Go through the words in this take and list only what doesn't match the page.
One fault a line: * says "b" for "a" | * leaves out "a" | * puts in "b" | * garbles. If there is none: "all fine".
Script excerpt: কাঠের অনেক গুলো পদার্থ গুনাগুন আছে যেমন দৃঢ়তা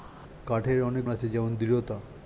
* leaves out "গুলো পদার্থ গুনাগুন"